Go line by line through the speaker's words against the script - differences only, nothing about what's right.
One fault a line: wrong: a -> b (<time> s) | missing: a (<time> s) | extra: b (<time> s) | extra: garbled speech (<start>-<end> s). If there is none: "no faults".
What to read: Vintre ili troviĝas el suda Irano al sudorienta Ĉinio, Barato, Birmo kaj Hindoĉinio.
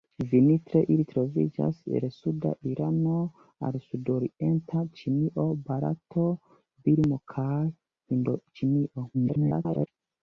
extra: garbled speech (9.1-9.9 s)